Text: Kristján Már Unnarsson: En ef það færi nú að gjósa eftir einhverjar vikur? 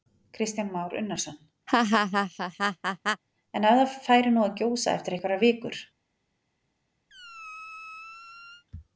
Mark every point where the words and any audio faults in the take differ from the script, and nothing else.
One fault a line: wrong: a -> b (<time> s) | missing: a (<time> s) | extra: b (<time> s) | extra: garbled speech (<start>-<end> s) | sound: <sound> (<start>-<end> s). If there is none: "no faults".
sound: laugh (1.7-3.2 s)
sound: squeak (7.1-8.6 s)